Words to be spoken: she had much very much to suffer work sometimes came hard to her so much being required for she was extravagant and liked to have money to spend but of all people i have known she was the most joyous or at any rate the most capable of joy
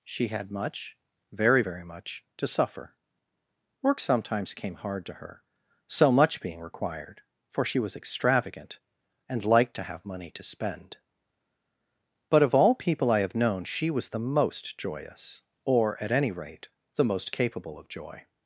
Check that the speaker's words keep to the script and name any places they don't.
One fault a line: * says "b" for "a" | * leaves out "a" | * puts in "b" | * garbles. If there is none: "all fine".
* puts in "very"